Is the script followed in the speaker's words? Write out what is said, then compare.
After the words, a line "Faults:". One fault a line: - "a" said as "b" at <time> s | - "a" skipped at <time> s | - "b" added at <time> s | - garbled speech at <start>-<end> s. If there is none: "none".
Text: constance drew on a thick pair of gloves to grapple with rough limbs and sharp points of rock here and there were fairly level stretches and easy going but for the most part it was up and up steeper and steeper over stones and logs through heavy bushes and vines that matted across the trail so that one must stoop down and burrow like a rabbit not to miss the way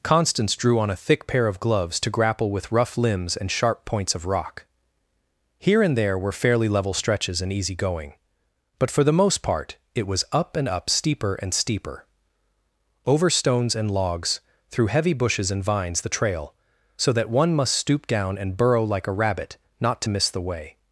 constance drew on a thick pair of gloves to grapple with rough limbs and sharp points of rock here and there were fairly level stretches and easy going but for the most part it was up and up steeper and steeper over stones and logs through heavy bushes and vines the trail so that one must stoop down and burrow like a rabbit not to miss the way
Faults:
- "that matted across" skipped at 16.0 s